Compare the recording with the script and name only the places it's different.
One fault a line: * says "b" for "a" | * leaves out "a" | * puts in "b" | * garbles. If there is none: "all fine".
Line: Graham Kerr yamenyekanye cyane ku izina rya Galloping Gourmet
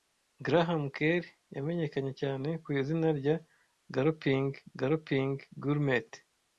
* puts in "Galloping"